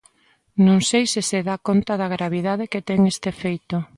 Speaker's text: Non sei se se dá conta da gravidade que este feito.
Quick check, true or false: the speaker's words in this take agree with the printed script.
false